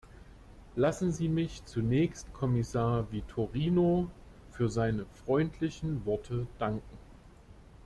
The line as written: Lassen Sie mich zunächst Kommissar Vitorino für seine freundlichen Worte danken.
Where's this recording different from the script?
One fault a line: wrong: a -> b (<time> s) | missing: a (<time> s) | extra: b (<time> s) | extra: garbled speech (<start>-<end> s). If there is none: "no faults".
no faults